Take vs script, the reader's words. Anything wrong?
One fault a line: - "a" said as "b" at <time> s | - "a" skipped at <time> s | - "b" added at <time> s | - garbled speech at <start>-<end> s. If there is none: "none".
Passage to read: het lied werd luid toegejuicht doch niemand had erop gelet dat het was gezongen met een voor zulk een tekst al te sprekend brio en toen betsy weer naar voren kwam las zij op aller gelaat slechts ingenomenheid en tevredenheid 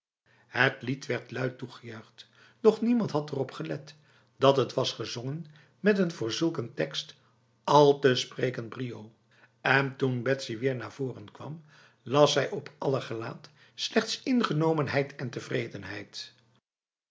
none